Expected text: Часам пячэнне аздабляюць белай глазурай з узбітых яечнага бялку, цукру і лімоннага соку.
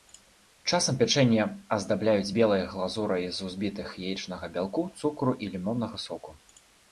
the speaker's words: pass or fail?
pass